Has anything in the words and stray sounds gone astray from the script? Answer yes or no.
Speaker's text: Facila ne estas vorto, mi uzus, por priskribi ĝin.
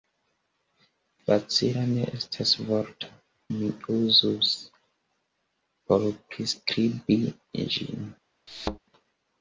yes